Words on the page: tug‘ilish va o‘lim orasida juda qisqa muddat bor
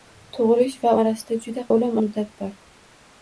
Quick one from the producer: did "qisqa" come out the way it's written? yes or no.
no